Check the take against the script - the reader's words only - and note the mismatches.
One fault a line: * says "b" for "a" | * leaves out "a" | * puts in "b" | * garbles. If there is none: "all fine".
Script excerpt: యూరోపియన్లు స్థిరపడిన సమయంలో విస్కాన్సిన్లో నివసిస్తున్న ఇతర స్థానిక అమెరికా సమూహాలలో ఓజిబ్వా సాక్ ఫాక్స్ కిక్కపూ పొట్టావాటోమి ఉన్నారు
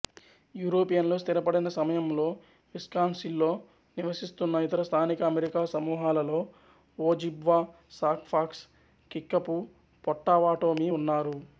all fine